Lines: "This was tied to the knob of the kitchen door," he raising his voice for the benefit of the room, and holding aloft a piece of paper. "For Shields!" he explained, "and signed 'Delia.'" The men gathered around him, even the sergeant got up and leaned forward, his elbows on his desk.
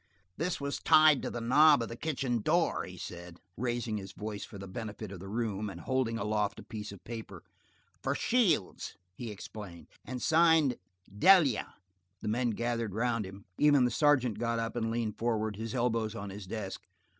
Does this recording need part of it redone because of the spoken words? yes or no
yes